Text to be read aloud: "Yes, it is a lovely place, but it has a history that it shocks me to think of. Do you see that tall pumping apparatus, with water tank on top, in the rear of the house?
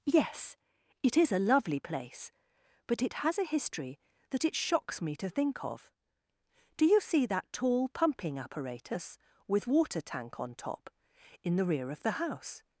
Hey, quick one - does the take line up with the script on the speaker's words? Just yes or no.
yes